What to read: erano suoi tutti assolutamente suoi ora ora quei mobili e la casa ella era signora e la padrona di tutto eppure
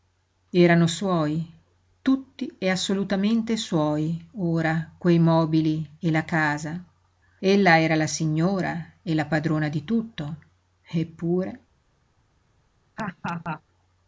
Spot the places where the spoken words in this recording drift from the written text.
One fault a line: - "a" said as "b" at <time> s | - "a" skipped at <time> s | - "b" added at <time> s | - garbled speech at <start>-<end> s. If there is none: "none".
- "e" added at 2.6 s
- "ora" skipped at 4.9 s
- "la" added at 8.0 s